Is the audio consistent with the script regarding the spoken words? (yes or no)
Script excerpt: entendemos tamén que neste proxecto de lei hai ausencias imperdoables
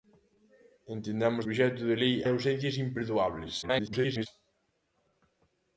no